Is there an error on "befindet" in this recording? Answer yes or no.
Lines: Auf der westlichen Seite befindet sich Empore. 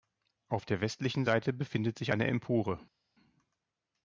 no